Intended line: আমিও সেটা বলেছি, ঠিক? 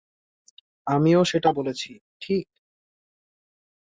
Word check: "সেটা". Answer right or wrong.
right